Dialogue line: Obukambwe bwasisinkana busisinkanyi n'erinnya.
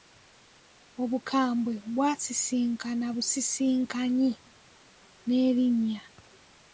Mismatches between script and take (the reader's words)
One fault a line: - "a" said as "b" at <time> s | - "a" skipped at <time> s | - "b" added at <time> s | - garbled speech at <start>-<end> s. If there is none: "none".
none